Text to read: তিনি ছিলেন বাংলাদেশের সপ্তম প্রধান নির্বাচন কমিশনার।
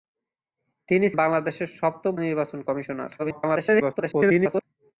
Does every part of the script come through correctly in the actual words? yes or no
no